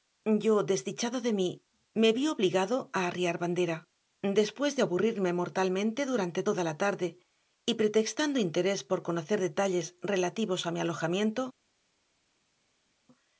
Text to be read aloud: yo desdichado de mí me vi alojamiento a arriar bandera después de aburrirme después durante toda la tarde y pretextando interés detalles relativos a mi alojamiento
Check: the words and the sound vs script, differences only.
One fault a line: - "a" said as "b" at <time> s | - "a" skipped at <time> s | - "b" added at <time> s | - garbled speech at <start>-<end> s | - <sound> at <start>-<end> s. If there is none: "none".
- "alojamiento" said as "obligado" at 2.4 s
- "después" said as "mortalmente" at 5.4 s
- "por conocer" added at 8.9 s